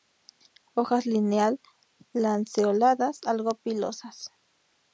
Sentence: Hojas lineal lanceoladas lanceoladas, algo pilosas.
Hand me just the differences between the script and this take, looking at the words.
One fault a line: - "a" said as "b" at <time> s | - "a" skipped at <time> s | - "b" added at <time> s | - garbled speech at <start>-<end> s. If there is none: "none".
- "lanceoladas" skipped at 3.2 s